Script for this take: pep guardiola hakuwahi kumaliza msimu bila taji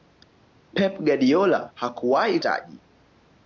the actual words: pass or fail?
fail